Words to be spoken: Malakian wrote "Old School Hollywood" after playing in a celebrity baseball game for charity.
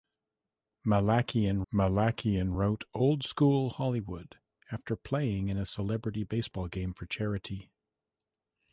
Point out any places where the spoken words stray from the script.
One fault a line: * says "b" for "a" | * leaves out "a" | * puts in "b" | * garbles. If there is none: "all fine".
* puts in "malakian"